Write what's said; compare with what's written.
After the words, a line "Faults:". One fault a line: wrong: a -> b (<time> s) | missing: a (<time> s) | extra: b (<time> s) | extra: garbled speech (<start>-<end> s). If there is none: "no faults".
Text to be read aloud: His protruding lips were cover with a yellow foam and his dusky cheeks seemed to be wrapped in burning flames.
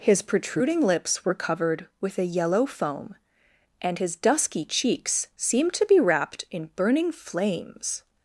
His protruding lips were covered with a yellow foam and his dusky cheeks seemed to be wrapped in burning flames.
Faults:
wrong: cover -> covered (1.4 s)